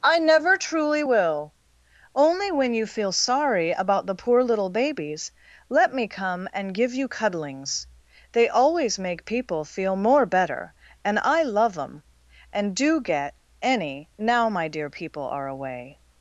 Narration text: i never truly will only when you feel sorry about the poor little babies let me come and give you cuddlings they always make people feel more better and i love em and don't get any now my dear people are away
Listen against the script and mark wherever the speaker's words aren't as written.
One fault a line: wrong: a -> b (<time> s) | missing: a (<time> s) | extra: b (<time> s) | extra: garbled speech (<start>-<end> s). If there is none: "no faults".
wrong: don't -> do (12.7 s)